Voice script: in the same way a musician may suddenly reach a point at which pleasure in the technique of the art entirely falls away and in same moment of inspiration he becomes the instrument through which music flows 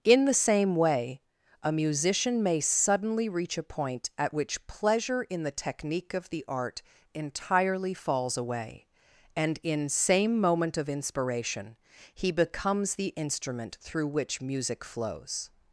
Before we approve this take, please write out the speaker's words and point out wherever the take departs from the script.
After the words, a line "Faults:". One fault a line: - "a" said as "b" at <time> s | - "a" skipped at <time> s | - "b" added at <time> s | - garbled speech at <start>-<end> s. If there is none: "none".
in the same way a musician may suddenly reach a point at which pleasure in the technique of the art entirely falls away and in same moment of inspiration he becomes the instrument through which music flows
Faults:
none